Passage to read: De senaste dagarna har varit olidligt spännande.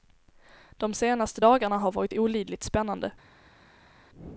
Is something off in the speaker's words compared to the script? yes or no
no